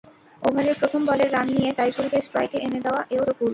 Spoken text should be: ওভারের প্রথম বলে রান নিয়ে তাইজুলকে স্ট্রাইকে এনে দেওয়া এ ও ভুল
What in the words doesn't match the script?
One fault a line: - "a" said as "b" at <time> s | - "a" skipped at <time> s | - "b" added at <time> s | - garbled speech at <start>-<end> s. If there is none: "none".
none